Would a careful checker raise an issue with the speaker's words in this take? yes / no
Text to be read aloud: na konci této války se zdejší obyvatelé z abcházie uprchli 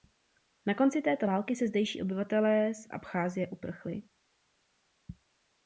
no